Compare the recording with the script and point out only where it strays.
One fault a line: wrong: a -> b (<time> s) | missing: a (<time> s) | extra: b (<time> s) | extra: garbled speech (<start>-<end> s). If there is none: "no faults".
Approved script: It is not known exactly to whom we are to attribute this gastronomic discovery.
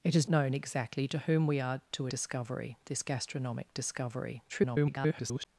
missing: not (0.3 s)
wrong: attribute -> discovery (2.1 s)
extra: garbled speech (4.5-5.5 s)